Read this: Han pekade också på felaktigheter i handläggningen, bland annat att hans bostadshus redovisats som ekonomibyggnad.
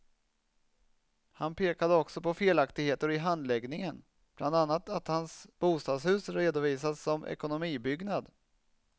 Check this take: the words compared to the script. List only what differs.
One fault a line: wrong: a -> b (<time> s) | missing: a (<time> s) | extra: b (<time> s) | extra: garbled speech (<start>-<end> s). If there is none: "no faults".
no faults